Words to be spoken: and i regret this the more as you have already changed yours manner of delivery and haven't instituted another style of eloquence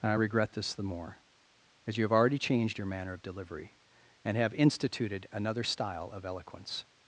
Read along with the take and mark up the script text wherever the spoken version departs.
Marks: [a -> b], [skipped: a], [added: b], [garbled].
and i regret this the more as you have already changed [yours -> your] manner of delivery and [haven't -> have] instituted another style of eloquence